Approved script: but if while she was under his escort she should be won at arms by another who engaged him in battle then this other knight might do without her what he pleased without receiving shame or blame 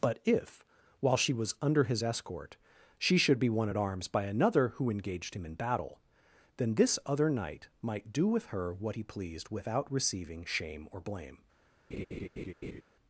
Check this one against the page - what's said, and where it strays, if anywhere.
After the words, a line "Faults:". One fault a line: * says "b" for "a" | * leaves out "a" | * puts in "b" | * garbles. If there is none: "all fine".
but if while she was under his escort she should be won at arms by another who engaged him in battle then this other knight might do with her what he pleased without receiving shame or blame
Faults:
* says "with" for "without"